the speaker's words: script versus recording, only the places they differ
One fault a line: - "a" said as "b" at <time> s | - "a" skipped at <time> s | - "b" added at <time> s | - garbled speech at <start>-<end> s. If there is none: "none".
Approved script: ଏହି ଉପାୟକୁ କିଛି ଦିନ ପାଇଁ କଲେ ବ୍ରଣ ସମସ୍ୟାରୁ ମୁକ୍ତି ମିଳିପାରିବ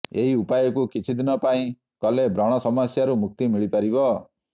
none